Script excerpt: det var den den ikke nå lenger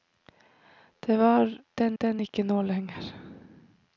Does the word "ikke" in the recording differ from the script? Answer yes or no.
no